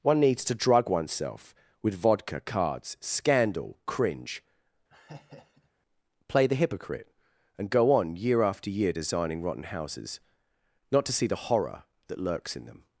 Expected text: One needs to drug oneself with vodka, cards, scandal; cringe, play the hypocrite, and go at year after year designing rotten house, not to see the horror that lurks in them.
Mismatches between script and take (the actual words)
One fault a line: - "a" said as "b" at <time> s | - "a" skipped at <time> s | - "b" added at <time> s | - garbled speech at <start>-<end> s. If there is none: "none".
- "at" said as "on" at 7.9 s
- "house" said as "houses" at 9.6 s